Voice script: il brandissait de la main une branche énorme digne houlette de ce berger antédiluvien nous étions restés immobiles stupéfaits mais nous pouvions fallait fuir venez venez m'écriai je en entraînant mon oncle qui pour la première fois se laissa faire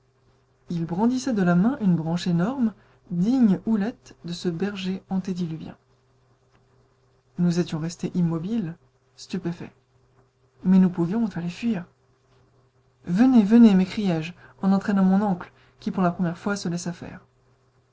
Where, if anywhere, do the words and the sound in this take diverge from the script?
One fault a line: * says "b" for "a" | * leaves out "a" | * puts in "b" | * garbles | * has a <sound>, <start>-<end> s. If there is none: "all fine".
all fine